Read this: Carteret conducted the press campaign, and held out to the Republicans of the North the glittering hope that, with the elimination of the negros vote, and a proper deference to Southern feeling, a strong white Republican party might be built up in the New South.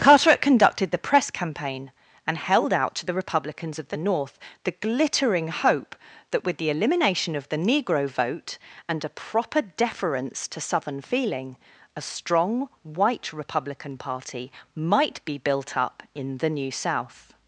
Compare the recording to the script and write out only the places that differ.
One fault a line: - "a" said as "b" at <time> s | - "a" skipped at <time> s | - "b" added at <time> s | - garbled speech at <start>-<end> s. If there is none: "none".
- "negros" said as "negro" at 7.6 s